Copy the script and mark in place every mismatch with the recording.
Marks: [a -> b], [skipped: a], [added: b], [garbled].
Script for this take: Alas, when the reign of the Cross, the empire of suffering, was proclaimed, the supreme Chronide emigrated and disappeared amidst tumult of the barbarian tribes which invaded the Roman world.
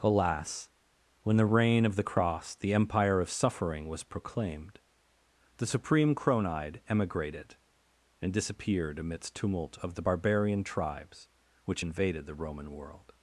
Alas, when the reign of the Cross, the empire of suffering, was proclaimed, the supreme Chronide emigrated and disappeared amidst tumult of the barbarian tribes which invaded the Roman world.